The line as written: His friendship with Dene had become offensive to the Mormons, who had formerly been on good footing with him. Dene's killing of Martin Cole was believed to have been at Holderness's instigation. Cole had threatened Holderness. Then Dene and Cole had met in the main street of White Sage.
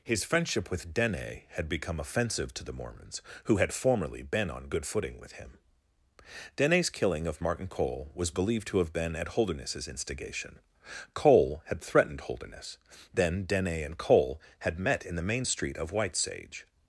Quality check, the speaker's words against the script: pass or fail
pass